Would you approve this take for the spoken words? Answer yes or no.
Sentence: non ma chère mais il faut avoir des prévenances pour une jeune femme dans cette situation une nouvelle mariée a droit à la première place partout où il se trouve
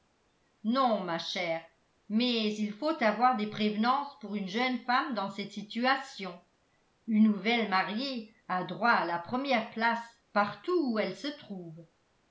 no